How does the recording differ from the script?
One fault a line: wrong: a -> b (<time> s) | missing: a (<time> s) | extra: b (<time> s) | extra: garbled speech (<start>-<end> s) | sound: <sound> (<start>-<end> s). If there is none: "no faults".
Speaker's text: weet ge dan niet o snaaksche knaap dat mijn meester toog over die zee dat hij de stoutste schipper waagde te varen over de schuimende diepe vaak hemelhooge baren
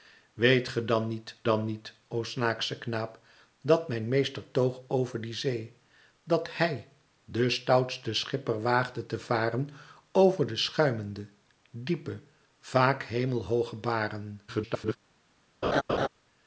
extra: dan niet (1.4 s)
extra: garbled speech (14.5-15.0 s)
sound: laugh (15.6-16.1 s)